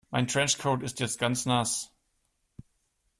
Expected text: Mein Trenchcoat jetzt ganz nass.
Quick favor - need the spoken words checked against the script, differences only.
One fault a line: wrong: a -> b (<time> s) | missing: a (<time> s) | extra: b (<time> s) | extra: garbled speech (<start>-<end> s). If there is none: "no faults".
extra: ist (0.8 s)